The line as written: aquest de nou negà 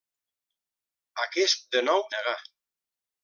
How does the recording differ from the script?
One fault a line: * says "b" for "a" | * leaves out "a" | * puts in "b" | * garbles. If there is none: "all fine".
all fine